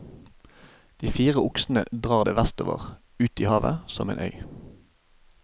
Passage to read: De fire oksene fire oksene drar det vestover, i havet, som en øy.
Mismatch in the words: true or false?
true